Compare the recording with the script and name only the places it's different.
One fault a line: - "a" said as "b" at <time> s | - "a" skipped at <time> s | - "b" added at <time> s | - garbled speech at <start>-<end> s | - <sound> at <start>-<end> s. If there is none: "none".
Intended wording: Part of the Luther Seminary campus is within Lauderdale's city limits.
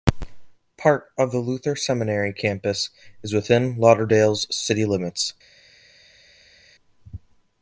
none